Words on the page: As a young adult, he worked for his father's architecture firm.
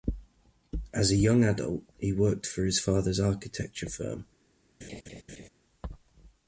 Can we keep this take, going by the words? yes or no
yes